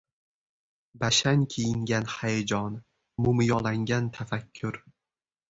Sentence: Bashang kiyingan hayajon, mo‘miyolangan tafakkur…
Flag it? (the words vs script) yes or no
no